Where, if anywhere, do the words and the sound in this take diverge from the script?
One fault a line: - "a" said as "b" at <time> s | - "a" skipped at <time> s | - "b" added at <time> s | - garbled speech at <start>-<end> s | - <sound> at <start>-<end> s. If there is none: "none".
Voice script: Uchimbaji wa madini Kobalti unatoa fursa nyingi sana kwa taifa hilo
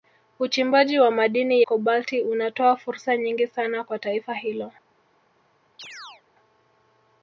- chirp at 5.8-6.2 s